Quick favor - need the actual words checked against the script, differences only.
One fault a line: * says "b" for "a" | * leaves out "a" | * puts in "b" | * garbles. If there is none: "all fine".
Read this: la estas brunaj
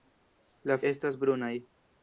all fine